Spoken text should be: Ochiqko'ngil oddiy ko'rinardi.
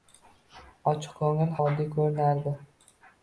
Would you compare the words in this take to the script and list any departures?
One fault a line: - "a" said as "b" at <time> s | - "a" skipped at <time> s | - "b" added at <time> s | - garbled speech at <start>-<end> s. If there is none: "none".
none